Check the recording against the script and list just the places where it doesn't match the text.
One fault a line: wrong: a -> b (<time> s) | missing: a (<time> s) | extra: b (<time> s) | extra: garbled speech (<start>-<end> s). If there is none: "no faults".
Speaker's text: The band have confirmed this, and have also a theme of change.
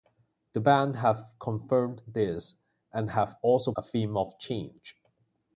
no faults